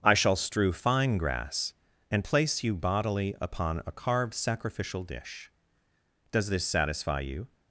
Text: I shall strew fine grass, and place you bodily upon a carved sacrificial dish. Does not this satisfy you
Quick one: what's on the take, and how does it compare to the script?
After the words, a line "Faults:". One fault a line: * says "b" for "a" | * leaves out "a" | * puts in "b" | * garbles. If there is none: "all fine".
I shall strew fine grass, and place you bodily upon a carved sacrificial dish. Does this satisfy you
Faults:
* leaves out "not"